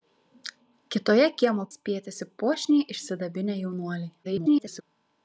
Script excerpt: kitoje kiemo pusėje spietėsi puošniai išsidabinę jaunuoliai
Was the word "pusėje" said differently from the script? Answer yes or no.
yes